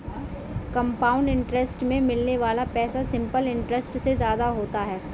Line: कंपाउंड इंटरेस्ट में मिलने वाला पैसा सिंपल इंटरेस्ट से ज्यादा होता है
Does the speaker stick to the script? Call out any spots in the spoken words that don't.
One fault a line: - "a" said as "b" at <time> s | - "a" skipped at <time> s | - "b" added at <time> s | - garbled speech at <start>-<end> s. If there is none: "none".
none